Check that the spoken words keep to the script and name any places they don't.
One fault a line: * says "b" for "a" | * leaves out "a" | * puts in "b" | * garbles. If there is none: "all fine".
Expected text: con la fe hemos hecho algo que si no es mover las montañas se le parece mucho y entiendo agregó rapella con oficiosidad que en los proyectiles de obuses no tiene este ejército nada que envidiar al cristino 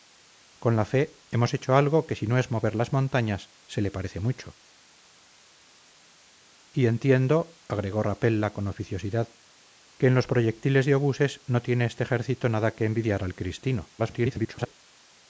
* garbles